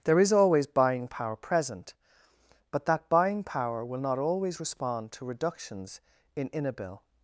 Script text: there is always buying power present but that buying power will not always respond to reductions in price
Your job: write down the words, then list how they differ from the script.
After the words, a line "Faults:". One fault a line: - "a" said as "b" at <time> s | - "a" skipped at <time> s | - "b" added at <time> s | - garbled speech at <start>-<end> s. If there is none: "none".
there is always buying power present but that buying power will not always respond to reductions in inabil
Faults:
- "price" said as "inabil" at 6.5 s